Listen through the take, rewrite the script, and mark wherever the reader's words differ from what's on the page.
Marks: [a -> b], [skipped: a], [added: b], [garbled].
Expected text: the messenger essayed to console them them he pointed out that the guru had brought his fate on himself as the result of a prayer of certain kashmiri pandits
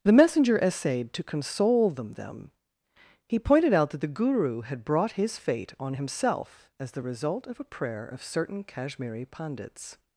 the messenger essayed to console them them he pointed out that the guru had brought his fate on himself as the result of a prayer of certain kashmiri pandits